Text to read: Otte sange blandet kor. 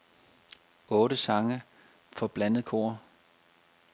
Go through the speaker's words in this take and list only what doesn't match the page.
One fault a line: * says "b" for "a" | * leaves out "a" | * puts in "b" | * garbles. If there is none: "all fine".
* puts in "for"